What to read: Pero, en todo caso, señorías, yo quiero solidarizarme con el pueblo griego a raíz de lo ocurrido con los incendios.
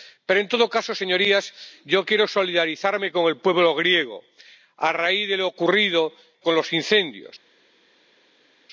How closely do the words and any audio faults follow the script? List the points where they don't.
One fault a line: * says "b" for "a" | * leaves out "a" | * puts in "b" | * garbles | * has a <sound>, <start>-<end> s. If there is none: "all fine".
all fine